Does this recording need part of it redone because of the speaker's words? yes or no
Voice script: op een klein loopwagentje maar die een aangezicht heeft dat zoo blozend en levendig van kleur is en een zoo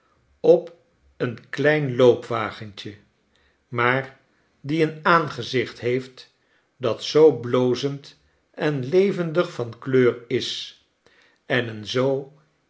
no